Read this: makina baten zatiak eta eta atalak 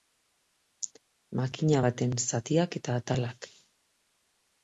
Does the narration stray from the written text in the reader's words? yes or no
yes